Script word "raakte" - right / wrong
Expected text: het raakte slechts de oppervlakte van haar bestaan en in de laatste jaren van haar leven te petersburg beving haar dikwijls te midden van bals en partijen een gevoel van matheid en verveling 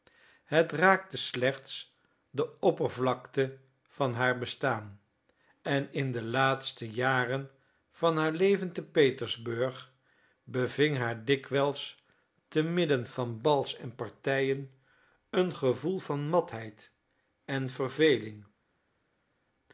right